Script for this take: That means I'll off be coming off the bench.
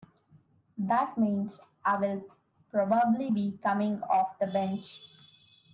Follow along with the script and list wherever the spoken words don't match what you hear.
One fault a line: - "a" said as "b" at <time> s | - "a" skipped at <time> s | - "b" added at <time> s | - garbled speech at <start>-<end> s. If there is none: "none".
- "off" said as "probably" at 2.7 s